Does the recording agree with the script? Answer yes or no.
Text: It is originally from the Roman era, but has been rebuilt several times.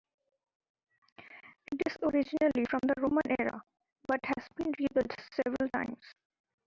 yes